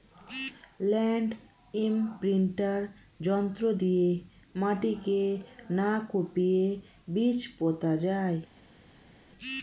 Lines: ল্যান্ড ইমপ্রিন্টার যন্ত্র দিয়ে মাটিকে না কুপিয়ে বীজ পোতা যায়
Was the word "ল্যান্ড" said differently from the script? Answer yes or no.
no